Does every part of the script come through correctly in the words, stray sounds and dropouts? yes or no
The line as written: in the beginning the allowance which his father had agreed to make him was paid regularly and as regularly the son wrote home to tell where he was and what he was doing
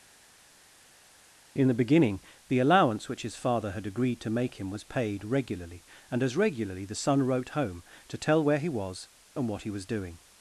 yes